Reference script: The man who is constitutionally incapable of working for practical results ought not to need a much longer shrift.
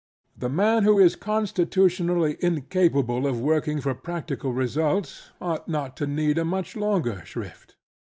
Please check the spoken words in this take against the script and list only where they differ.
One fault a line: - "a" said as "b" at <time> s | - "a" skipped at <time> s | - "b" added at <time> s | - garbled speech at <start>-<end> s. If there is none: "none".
none